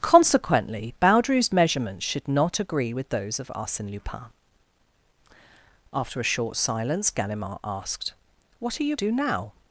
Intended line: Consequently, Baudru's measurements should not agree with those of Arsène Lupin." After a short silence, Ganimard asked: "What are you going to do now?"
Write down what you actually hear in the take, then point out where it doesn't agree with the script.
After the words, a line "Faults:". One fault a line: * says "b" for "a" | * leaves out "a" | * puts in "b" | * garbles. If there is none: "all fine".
Consequently, Baudru's measurements should not agree with those of Arsène Lupin." After a short silence, Ganimard asked: "What are you do now?"
Faults:
* leaves out "going to"